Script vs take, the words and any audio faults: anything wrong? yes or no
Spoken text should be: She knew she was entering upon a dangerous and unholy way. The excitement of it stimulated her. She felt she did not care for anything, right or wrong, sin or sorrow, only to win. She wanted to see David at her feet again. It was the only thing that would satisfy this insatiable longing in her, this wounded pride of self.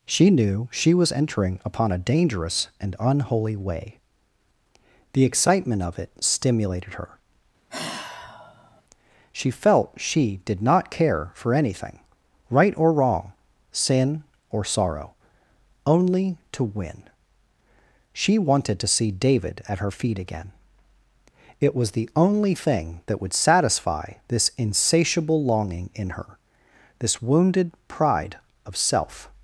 yes